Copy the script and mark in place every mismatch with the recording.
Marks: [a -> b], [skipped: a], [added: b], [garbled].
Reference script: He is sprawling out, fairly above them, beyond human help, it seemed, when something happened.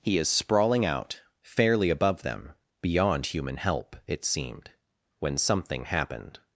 He is sprawling out, fairly above them, beyond human help, it seemed, when something happened.